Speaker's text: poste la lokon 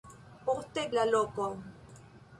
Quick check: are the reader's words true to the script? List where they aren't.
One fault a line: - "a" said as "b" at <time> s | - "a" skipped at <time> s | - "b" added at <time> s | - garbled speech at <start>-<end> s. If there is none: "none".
none